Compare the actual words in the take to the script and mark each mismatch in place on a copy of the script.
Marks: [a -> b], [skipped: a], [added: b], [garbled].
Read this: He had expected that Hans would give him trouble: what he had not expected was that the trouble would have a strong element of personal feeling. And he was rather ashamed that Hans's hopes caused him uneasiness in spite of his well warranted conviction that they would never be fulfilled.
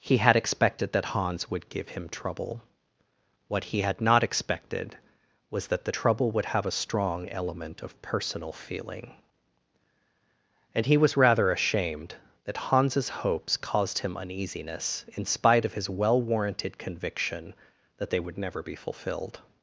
He had expected that Hans would give him trouble: what he had not expected was that the trouble would have a strong element of personal feeling. And he was rather ashamed that Hans's hopes caused him uneasiness in spite of his well warranted conviction that they would never be fulfilled.